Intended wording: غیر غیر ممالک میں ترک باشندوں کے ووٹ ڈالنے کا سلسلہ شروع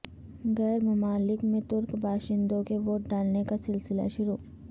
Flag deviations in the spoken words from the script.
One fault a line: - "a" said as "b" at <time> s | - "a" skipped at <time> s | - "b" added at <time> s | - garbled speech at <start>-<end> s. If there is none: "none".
- "غیر" skipped at 0.8 s